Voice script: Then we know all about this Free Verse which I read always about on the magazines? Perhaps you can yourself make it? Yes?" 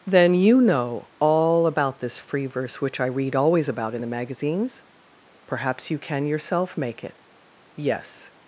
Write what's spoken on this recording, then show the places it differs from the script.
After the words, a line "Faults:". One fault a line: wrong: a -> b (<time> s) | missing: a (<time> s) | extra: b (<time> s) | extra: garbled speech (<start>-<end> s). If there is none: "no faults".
Then you know all about this Free Verse which I read always about in the magazines? Perhaps you can yourself make it? Yes?"
Faults:
wrong: we -> you (0.3 s)
wrong: on -> in (3.9 s)